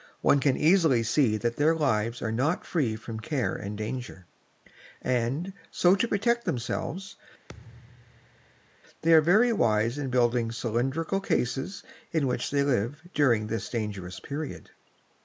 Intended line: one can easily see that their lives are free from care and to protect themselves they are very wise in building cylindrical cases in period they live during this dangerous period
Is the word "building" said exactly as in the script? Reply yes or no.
yes